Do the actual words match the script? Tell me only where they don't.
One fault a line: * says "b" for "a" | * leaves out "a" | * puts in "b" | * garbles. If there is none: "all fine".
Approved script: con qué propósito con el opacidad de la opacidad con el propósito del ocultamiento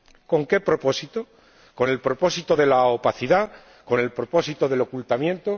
* says "propósito" for "opacidad"